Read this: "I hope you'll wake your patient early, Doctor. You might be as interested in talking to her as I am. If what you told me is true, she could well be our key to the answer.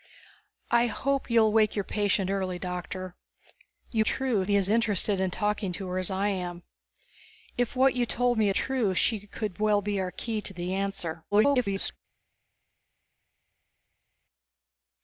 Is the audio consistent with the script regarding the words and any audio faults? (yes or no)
no